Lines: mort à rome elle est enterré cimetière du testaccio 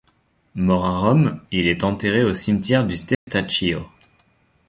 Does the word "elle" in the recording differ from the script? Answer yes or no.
yes